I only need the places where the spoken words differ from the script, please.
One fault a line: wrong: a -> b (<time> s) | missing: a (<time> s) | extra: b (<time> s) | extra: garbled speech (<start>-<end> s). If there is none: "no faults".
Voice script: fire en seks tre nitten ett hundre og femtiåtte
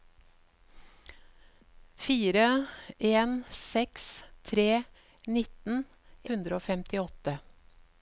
missing: ett (5.8 s)